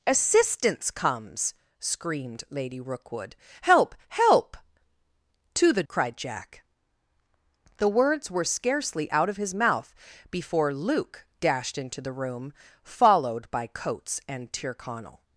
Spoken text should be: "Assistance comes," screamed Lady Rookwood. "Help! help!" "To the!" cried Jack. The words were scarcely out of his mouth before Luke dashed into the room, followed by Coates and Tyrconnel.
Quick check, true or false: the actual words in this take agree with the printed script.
true